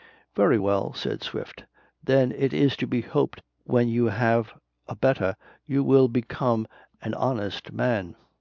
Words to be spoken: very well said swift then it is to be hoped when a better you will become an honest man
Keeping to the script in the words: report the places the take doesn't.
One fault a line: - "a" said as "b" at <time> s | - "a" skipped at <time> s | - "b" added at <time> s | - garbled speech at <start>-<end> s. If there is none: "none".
- "you have" added at 3.9 s